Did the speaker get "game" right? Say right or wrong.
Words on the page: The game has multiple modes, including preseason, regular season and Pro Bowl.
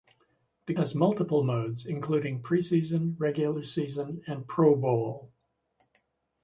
wrong